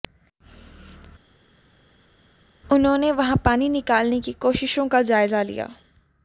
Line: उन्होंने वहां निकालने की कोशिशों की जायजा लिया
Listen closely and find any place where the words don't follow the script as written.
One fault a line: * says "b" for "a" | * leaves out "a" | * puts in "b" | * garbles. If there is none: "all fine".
* puts in "पानी"
* says "का" for "की"